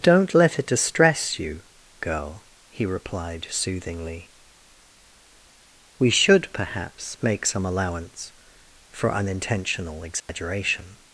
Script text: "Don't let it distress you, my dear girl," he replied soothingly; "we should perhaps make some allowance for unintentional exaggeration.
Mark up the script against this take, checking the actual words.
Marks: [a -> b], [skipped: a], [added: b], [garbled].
"Don't let it distress you, [skipped: my dear] girl," he replied soothingly; "we should perhaps make some allowance for unintentional exaggeration.